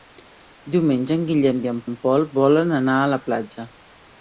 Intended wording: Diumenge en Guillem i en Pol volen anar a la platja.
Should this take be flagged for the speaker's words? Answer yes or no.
yes